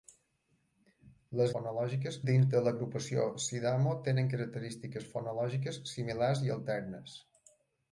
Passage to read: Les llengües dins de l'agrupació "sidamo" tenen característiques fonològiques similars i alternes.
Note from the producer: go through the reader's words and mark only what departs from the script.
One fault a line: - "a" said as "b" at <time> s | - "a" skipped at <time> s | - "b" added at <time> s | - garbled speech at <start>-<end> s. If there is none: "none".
- "llengües" said as "fonològiques" at 1.5 s